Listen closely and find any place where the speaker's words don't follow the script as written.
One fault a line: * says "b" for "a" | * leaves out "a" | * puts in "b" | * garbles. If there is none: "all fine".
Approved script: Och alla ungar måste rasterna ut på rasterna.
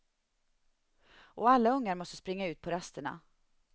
* says "springa" for "rasterna"